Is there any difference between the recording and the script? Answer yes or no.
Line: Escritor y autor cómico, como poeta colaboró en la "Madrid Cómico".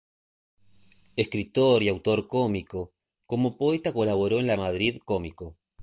no